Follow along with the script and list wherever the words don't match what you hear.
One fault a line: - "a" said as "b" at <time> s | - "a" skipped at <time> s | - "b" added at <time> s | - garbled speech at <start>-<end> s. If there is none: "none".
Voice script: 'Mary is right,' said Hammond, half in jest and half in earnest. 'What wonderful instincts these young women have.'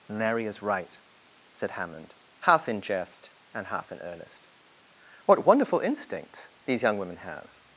none